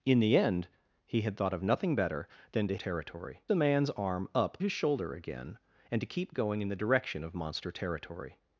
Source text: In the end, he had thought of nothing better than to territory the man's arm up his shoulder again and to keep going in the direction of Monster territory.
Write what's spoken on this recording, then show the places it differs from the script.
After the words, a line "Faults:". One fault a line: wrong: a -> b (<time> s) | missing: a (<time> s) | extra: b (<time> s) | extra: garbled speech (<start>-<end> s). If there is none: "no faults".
In the end, he had thought of nothing better than to territory the man's arm up his shoulder again and to keep going in the direction of Monster territory.
Faults:
no faults